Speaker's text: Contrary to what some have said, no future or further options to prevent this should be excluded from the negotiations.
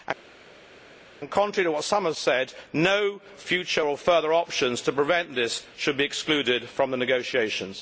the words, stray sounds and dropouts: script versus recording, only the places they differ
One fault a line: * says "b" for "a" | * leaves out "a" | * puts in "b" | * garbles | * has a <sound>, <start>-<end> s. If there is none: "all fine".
all fine